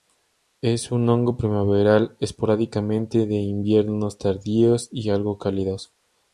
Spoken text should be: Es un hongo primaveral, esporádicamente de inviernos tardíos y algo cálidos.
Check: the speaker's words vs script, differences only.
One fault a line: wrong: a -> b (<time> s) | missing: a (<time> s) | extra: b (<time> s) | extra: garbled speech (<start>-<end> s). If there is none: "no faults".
no faults